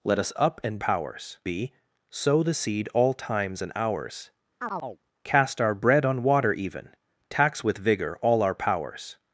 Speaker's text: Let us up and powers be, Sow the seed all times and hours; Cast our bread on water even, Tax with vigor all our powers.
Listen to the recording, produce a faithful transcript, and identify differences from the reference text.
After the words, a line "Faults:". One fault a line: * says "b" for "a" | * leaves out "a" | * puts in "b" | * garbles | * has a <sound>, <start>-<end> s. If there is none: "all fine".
Let us up and powers be, Sow the seed all times and hours; Cast our bread on water even, Tax with vigor all our powers.
Faults:
* has a chirp, 4.6-5.0 s